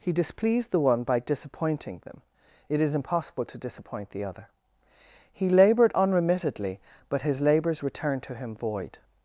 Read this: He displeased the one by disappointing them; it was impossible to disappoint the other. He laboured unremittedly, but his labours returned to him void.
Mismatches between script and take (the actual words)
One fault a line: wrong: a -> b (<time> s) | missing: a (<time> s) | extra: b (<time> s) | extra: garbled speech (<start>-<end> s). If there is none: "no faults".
wrong: was -> is (2.8 s)